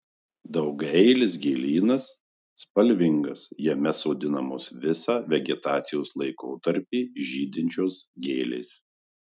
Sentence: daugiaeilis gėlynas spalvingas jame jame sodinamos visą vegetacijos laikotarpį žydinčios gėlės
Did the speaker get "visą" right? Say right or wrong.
right